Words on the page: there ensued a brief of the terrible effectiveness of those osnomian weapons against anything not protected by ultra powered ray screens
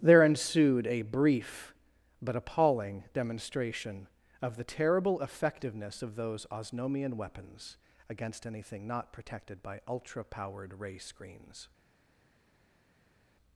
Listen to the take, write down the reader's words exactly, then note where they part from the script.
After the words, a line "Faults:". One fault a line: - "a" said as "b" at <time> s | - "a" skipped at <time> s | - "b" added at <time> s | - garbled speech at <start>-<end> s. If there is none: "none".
there ensued a brief but appalling demonstration of the terrible effectiveness of those osnomian weapons against anything not protected by ultra powered ray screens
Faults:
- "but appalling demonstration" added at 2.2 s